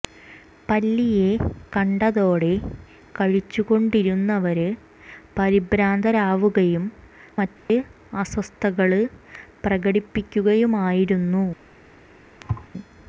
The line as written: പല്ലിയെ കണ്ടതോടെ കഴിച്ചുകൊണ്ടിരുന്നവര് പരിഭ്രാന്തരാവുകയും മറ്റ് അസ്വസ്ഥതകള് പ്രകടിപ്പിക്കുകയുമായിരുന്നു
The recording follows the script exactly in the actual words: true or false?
true